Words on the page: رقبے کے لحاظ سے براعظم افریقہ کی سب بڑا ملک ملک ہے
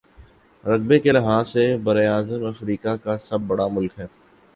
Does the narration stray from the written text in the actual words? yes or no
yes